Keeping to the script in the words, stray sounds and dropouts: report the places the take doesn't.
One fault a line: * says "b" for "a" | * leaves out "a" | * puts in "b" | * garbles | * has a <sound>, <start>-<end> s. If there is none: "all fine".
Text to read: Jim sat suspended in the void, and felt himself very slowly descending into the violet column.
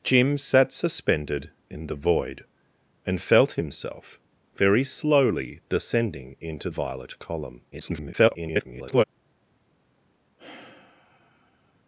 * leaves out "the"
* garbles
* has a sigh, 10.4-11.8 s